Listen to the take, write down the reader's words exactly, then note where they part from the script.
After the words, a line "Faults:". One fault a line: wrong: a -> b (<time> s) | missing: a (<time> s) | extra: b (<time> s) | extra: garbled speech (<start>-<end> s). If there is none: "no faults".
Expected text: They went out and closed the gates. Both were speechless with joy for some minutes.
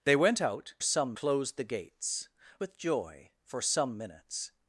They went out some closed the gates. With joy for some minutes.
Faults:
wrong: and -> some (0.8 s)
missing: Both were speechless (2.3 s)